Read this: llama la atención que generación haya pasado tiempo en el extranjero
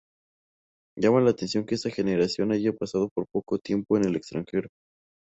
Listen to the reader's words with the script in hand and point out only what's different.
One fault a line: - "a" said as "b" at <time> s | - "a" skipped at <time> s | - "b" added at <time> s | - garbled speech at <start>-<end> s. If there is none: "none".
- "esta" added at 1.8 s
- "poco" added at 3.3 s